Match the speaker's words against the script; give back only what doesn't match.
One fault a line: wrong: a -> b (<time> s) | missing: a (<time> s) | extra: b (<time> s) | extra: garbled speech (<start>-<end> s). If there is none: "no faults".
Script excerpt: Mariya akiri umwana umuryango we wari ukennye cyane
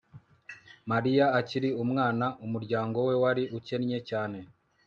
no faults